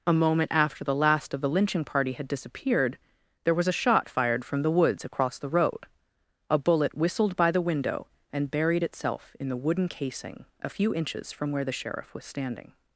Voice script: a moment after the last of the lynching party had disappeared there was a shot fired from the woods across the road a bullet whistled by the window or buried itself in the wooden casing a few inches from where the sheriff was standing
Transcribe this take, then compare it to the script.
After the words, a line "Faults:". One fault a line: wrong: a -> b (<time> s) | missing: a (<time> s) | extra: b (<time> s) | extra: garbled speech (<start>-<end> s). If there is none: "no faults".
a moment after the last of the lynching party had disappeared there was a shot fired from the woods across the road a bullet whistled by the window and buried itself in the wooden casing a few inches from where the sheriff was standing
Faults:
wrong: or -> and (8.3 s)